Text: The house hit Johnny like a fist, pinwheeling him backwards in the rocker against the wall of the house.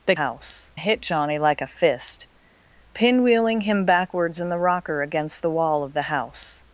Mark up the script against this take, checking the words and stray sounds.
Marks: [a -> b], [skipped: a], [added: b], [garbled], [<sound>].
The house hit Johnny like a fist, pinwheeling him backwards in the rocker against the wall of the house.